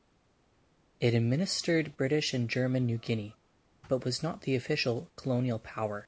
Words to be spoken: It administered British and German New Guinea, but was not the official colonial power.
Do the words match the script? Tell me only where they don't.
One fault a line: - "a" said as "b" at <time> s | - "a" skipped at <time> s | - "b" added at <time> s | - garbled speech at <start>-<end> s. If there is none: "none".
none